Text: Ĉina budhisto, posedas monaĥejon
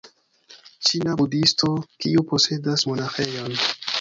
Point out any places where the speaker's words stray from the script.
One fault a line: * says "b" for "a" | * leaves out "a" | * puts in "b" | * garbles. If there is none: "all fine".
* puts in "kiu"